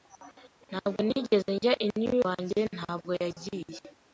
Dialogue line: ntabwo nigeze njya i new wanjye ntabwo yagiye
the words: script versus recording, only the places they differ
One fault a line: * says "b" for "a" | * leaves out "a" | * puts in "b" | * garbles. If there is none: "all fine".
all fine